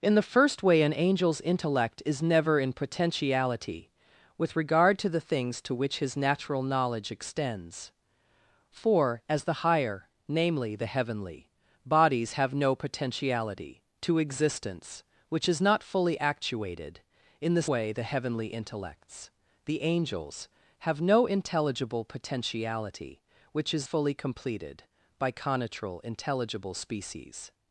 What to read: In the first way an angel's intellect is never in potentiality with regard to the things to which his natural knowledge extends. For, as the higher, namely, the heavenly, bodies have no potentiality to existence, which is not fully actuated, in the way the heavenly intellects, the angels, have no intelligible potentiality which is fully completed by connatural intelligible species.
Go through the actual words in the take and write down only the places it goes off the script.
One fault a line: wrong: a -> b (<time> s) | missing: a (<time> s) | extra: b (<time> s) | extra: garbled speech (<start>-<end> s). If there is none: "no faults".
no faults